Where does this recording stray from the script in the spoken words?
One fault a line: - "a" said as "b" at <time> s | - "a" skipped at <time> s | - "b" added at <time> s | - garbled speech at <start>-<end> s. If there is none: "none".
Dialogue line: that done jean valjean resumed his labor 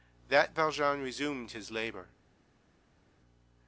- "done jean" skipped at 0.6 s